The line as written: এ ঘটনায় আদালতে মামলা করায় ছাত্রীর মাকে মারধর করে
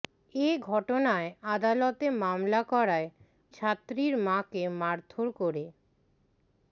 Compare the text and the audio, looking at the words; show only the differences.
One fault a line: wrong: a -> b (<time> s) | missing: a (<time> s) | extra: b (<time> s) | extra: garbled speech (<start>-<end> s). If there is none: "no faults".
no faults